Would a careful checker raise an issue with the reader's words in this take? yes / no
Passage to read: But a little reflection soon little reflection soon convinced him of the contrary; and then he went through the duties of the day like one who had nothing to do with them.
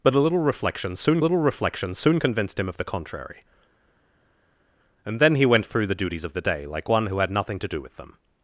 no